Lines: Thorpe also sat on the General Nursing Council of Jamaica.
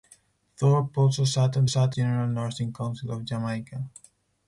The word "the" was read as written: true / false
false